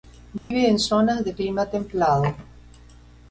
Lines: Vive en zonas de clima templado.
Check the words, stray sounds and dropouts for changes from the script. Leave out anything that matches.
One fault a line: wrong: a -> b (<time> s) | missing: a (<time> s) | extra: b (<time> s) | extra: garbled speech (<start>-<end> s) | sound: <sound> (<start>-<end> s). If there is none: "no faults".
sound: dropout (0.4-0.5 s)